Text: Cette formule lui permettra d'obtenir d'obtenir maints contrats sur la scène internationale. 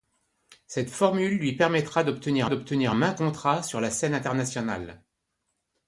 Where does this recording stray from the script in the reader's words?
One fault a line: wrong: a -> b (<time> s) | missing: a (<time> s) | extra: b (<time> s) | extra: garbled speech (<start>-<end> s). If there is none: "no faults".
no faults